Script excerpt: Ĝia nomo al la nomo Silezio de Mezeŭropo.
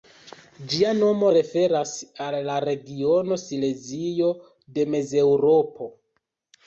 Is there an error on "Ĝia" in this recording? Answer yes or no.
no